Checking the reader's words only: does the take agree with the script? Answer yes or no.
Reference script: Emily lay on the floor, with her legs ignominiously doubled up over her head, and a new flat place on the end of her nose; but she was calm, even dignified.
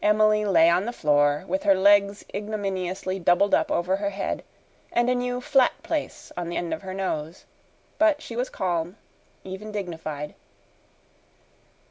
yes